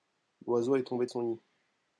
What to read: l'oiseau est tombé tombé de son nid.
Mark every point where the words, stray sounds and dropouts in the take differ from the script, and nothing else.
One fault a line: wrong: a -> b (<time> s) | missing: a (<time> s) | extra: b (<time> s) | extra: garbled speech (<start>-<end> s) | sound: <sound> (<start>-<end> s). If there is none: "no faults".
missing: tombé (1.1 s)